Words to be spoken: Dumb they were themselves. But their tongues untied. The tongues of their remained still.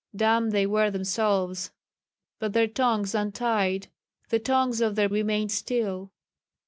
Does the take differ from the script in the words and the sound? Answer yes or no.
no